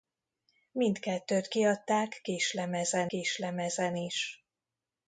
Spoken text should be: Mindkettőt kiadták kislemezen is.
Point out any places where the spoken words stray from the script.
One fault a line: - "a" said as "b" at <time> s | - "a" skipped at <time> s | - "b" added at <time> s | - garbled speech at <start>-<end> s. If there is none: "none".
- "kislemezen" added at 3.1 s